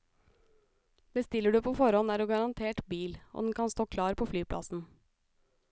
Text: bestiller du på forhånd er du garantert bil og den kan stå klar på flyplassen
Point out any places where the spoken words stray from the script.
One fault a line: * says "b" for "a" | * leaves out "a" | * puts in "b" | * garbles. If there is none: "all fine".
all fine